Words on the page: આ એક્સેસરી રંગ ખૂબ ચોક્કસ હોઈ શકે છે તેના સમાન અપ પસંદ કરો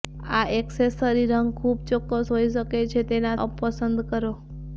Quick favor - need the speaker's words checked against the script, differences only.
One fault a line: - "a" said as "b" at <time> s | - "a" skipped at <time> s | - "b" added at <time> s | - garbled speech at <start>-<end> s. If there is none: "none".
- "સમાન" skipped at 3.4 s